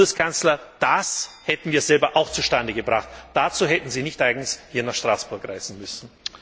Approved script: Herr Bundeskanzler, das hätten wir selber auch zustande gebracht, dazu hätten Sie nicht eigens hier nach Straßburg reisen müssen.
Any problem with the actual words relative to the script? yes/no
no